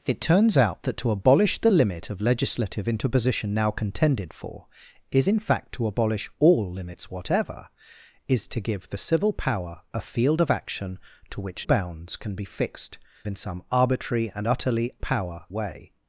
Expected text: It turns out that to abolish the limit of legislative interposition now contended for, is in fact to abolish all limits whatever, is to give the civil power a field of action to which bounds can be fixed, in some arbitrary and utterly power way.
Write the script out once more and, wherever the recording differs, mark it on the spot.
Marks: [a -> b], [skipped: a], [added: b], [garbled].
It turns out that to abolish the limit of legislative interposition now contended for, is in fact to abolish all limits whatever, is to give the civil power a field of action to which bounds can be fixed, in some arbitrary and utterly power way.